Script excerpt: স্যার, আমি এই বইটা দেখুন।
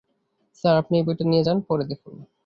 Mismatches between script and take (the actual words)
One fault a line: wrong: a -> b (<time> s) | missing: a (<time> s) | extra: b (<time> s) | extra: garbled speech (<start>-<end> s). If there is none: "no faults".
wrong: আমি -> আপনি (0.8 s)
extra: নিয়ে যান পড়ে (1.2 s)